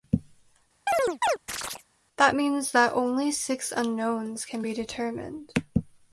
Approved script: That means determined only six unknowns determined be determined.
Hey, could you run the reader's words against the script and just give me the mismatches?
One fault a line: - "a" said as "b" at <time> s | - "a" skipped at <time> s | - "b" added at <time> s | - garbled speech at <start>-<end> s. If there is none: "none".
- "determined" said as "that" at 2.7 s
- "determined" said as "can" at 4.5 s